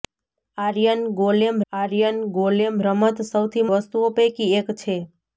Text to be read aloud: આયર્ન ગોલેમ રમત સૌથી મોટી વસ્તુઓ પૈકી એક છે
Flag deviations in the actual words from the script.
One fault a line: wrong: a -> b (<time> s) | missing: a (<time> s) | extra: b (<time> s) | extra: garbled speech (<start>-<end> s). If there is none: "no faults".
extra: આયર્ન ગોલેમ (1.7 s)
missing: મોટી (3.7 s)